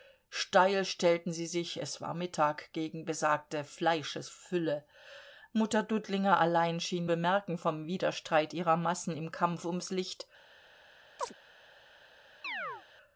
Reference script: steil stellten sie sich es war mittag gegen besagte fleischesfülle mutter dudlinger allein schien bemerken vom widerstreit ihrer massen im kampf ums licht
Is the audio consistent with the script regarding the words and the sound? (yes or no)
no